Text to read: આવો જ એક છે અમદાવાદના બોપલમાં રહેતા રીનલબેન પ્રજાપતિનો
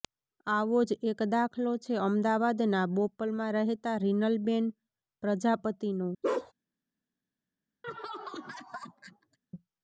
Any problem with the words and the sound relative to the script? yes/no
yes